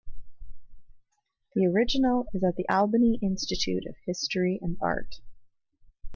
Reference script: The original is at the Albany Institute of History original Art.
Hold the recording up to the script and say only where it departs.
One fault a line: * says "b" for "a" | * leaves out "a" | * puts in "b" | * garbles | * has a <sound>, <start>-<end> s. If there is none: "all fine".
* says "and" for "original"